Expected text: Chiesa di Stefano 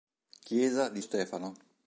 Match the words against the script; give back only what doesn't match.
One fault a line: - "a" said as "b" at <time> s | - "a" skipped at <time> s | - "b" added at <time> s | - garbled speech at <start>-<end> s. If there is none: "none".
none